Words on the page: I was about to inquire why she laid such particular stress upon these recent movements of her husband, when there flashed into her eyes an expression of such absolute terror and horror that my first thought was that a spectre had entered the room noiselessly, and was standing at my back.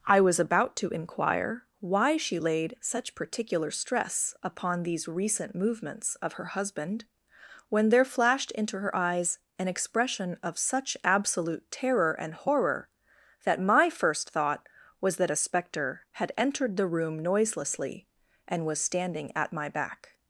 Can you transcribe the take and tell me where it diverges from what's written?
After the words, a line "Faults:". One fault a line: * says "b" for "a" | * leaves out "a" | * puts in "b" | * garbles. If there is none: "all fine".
I was about to inquire why she laid such particular stress upon these recent movements of her husband, when there flashed into her eyes an expression of such absolute terror and horror that my first thought was that a spectre had entered the room noiselessly, and was standing at my back.
Faults:
all fine